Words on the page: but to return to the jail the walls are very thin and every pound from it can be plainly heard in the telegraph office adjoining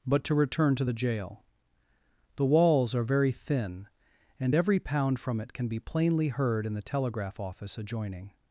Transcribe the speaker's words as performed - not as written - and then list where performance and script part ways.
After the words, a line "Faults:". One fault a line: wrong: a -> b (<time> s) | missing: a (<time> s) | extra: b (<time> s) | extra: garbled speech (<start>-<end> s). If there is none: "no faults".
but to return to the jail the walls are very thin and every pound from it can be plainly heard in the telegraph office adjoining
Faults:
no faults